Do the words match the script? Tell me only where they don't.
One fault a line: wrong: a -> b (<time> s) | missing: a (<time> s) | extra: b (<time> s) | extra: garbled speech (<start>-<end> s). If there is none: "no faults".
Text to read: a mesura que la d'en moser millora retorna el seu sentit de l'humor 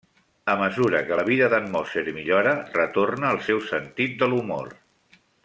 extra: vida (1.3 s)